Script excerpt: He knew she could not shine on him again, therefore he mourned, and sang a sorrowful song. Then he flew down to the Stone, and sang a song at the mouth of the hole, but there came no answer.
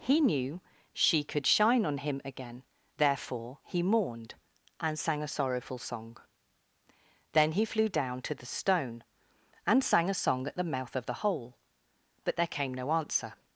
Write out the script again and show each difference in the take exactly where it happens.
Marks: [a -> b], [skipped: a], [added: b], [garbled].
He knew she could [skipped: not] shine on him again, therefore he mourned, and sang a sorrowful song. Then he flew down to the Stone, and sang a song at the mouth of the hole, but there came no answer.